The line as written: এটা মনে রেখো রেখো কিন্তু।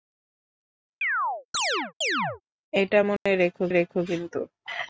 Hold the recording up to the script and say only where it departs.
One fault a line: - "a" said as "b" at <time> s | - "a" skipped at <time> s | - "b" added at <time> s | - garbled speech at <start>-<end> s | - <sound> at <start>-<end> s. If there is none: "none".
- chirp at 1.0-2.4 s
- dropout at 3.2-3.3 s